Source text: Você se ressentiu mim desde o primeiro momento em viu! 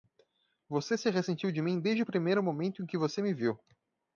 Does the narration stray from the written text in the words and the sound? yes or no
yes